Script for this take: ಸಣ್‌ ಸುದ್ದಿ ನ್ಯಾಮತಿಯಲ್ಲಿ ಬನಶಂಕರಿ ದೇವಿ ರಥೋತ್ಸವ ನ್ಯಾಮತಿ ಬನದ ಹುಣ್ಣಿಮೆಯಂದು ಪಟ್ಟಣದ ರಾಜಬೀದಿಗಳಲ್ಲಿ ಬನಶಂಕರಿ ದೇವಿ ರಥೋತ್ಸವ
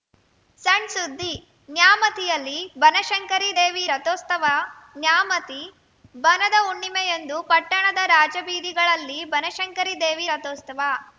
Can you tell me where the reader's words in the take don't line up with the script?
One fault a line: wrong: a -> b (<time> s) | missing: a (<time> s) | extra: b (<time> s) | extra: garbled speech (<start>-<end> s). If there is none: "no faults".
no faults